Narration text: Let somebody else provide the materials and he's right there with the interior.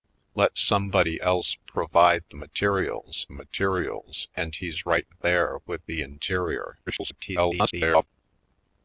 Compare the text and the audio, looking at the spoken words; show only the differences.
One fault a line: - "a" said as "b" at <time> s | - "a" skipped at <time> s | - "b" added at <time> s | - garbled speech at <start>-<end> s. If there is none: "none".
- "materials" added at 3.3 s
- garbled speech at 6.9-8.1 s